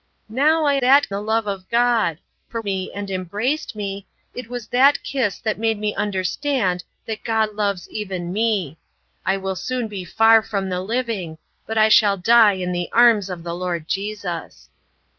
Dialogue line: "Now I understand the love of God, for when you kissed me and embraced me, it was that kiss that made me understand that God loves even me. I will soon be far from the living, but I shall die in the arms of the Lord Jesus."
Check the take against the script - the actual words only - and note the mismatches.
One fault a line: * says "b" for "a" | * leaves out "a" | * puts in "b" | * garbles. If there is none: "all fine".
* says "that" for "understand"
* leaves out "when you kissed"